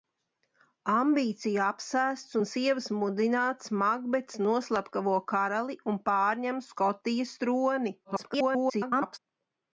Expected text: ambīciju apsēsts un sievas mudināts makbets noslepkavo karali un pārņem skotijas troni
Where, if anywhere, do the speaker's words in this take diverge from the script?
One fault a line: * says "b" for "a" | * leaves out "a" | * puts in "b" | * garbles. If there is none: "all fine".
* garbles